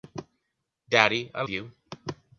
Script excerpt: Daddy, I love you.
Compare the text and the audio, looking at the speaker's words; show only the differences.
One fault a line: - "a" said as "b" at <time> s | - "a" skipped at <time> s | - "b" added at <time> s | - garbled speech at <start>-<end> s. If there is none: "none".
- "love" skipped at 1.4 s